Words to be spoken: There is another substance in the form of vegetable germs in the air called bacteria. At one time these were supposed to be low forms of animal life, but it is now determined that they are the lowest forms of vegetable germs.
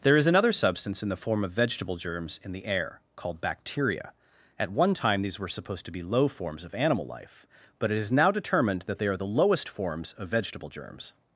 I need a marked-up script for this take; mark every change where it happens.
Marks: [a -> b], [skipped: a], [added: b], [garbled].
There is another substance in the form of vegetable germs in the air called bacteria. At one time these were supposed to be low forms of animal life, but it is now determined that they are the lowest forms of vegetable germs.